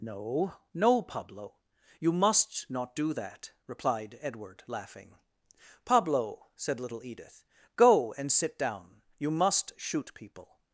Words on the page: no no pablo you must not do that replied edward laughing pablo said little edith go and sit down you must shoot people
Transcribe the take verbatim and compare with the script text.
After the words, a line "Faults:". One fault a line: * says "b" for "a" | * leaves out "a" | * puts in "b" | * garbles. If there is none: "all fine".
no no pablo you must not do that replied edward laughing pablo said little edith go and sit down you must shoot people
Faults:
all fine